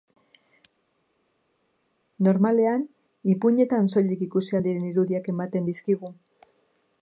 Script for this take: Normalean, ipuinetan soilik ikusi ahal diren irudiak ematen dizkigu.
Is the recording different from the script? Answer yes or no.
no